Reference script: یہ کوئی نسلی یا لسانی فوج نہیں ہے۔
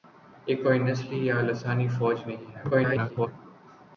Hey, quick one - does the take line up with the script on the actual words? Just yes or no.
no